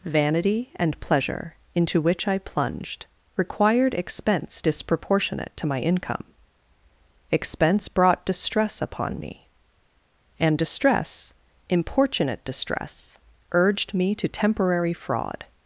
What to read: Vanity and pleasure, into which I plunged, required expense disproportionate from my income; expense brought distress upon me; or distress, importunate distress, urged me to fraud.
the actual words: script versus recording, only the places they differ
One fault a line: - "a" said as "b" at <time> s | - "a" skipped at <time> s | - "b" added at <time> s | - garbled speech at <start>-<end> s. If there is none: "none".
- "from" said as "to" at 5.6 s
- "or" said as "and" at 10.4 s
- "temporary" added at 14.3 s